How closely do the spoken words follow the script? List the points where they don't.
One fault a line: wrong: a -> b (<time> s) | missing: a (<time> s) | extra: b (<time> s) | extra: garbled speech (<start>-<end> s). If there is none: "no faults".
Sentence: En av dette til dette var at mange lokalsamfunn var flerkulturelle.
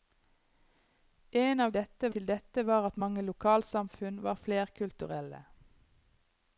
no faults